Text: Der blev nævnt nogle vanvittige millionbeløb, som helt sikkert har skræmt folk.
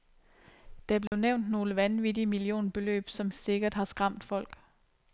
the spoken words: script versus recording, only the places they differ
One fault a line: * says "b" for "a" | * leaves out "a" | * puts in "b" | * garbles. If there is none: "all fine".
* leaves out "helt"